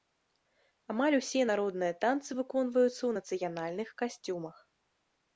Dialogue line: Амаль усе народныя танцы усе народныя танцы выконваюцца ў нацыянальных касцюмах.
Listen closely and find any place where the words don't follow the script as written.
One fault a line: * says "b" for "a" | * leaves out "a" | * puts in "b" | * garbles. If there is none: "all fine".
* leaves out "усе народныя танцы"